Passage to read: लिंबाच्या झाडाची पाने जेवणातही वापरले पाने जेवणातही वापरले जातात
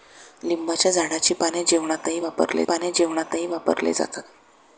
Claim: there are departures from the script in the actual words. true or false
false